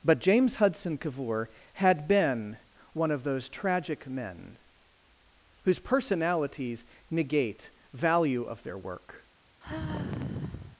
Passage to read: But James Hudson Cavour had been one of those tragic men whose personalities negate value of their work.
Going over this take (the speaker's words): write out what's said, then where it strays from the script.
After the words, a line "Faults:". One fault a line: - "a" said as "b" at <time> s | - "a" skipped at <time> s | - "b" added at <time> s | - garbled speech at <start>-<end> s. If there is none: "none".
But James Hudson Cavour had been one of those tragic men whose personalities negate value of their work.
Faults:
none